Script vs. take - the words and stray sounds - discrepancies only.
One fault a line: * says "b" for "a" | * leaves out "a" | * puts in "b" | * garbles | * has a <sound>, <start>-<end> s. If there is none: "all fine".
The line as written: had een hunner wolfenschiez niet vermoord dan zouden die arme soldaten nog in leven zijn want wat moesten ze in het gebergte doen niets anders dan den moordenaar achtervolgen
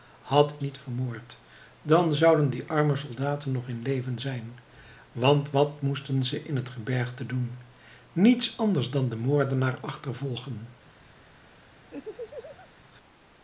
* leaves out "een hunner wolfenschiez"
* has a laugh, 11.9-12.7 s